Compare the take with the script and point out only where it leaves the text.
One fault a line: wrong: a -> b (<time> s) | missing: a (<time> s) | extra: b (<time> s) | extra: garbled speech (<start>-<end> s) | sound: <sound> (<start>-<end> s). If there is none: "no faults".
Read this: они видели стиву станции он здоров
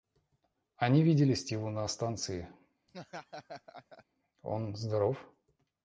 extra: на (1.7 s)
sound: laugh (2.9-4.0 s)